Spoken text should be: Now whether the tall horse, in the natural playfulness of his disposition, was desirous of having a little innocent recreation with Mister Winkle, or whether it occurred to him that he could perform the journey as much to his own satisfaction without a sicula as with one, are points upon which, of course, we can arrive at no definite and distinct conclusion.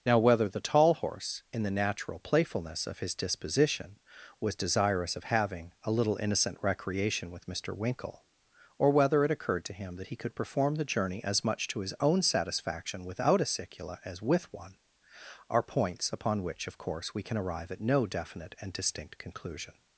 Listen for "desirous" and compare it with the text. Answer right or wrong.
right